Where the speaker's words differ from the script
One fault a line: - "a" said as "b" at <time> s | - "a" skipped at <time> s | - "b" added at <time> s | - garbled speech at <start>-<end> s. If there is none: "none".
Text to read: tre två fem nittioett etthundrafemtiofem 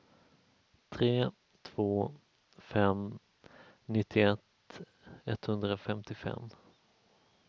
none